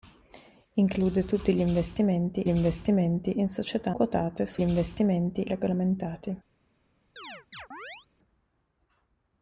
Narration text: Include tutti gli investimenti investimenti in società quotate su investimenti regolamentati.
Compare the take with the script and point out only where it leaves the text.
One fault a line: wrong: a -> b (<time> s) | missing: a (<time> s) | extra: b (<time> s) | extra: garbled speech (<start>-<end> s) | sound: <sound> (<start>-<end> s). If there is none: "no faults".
sound: chirp (7.2-8.1 s)